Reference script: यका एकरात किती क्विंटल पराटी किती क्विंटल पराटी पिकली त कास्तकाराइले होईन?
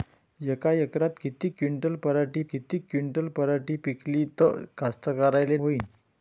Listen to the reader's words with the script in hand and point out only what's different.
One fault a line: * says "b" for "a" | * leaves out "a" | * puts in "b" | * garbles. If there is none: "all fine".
all fine